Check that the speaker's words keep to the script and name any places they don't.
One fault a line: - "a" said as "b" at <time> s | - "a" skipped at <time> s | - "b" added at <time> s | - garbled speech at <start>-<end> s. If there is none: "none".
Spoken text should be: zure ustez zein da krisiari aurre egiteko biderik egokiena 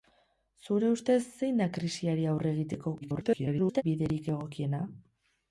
- garbled speech at 3.0-3.8 s